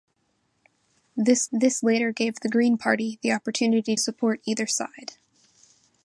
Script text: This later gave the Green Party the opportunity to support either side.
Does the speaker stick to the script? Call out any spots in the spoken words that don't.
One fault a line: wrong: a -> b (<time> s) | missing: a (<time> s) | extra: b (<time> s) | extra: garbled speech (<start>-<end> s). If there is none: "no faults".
extra: this (1.5 s)
missing: to (3.9 s)